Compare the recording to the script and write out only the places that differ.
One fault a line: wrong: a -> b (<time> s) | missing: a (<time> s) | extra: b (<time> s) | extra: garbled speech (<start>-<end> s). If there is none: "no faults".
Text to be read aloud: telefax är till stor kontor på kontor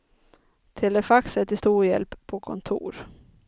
wrong: kontor -> hjälp (1.9 s)